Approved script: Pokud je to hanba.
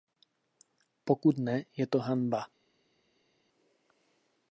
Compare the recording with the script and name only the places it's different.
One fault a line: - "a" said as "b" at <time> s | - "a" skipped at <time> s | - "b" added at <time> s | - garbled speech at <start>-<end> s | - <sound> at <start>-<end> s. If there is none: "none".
- "ne" added at 1.4 s